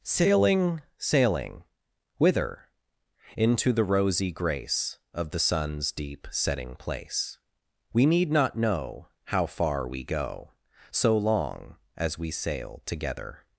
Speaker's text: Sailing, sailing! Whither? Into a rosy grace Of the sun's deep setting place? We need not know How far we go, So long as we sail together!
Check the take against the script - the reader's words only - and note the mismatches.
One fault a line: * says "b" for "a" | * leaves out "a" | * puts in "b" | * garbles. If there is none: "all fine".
* says "the" for "a"